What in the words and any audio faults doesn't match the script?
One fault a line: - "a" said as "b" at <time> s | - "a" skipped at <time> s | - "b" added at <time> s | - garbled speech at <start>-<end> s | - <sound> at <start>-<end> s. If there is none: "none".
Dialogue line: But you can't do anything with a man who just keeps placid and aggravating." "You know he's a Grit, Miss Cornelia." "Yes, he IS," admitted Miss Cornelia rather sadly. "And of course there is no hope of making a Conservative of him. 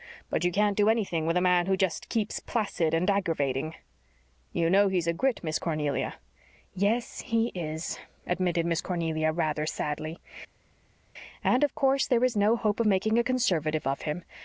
none